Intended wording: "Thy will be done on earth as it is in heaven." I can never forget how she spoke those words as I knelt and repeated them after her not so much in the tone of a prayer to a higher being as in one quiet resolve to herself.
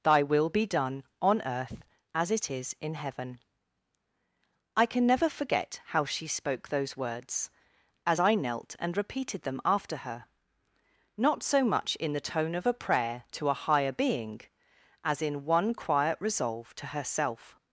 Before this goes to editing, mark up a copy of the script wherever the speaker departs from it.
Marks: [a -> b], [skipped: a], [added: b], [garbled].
"Thy will be done on earth as it is in heaven." I can never forget how she spoke those words as I knelt and repeated them after her not so much in the tone of a prayer to a higher being as in one quiet resolve to herself.